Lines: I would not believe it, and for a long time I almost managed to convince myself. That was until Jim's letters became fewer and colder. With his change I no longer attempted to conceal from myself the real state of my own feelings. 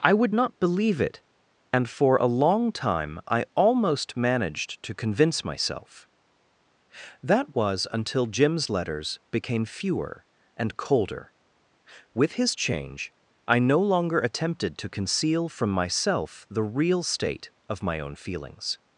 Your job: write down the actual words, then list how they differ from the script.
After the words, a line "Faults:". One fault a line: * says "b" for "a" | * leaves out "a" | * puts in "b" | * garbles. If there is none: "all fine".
I would not believe it, and for a long time I almost managed to convince myself. That was until Jim's letters became fewer and colder. With his change I no longer attempted to conceal from myself the real state of my own feelings.
Faults:
all fine